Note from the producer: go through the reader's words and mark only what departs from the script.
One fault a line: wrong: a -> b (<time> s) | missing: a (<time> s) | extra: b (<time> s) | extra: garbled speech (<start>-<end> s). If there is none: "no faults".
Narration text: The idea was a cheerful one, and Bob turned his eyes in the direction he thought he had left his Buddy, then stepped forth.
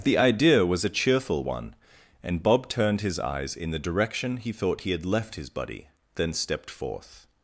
no faults